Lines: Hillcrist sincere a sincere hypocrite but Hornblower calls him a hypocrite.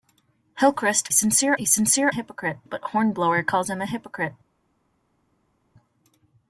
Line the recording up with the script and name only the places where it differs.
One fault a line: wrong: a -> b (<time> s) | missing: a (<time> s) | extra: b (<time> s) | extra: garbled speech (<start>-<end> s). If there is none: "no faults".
no faults